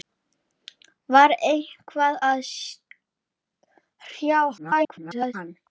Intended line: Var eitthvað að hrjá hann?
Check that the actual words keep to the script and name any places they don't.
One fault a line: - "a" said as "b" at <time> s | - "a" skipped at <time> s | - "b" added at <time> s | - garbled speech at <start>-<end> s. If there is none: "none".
- garbled speech at 4.6-5.3 s